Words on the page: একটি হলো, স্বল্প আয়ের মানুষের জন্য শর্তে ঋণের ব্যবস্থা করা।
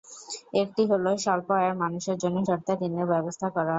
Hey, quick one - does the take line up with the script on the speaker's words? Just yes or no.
yes